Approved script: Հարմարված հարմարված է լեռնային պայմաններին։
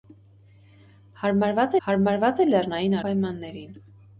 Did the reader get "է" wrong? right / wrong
right